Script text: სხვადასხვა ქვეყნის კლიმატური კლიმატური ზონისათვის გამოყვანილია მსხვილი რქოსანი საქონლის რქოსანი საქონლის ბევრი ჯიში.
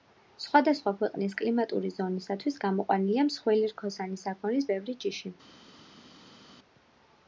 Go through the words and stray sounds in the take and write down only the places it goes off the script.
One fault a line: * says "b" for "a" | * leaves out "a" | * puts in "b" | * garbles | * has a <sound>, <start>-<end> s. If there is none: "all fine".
* leaves out "კლიმატური"
* leaves out "რქოსანი საქონლის"